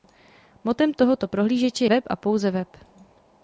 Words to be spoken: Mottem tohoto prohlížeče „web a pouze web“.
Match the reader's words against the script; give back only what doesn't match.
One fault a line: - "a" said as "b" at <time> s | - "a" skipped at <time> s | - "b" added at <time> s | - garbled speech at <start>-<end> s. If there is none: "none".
none